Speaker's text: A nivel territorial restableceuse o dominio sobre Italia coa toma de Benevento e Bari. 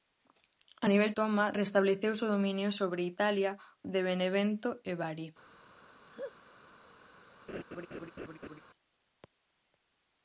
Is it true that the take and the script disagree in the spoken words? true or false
true